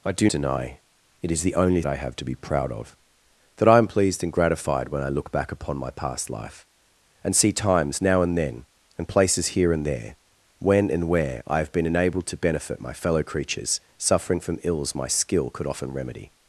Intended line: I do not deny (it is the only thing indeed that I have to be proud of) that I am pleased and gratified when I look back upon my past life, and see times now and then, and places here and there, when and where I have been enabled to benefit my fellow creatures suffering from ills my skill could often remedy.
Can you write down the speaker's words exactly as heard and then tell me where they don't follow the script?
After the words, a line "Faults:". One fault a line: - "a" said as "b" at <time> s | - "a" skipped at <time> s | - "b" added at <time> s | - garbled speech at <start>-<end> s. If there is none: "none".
I do deny (it is the only I have to be proud of) that I am pleased and gratified when I look back upon my past life, and see times now and then, and places here and there, when and where I have been enabled to benefit my fellow creatures suffering from ills my skill could often remedy.
Faults:
- "not" skipped at 0.3 s
- "thing indeed that" skipped at 1.8 s